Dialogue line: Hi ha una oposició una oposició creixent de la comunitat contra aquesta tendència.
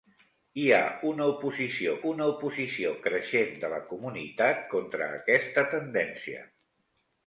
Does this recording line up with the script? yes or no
yes